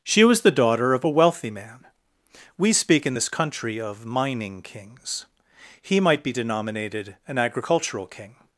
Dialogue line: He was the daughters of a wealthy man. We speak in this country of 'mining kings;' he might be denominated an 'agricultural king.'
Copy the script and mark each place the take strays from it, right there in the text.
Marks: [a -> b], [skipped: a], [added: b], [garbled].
[He -> She] was the [daughters -> daughter] of a wealthy man. We speak in this country of 'mining kings;' he might be denominated an 'agricultural king.'